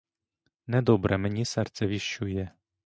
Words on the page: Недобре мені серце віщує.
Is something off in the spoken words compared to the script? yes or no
no